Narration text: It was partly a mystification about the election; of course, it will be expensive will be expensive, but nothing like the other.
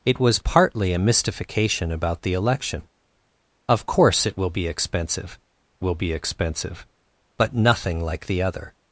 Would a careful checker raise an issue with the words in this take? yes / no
no